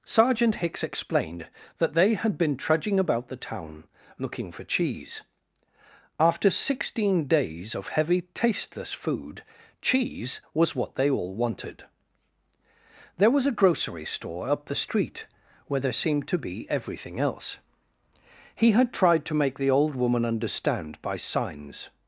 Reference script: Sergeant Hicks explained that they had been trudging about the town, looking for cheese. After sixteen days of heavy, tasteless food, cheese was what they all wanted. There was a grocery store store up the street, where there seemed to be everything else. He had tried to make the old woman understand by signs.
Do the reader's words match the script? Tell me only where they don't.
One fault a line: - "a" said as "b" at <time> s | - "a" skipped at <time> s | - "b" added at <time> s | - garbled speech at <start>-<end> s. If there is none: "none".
- "store" skipped at 14.5 s